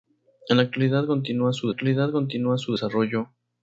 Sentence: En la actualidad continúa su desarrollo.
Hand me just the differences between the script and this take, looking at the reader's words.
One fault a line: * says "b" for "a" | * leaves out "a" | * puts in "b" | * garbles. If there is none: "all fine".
* puts in "actualidad continúa su"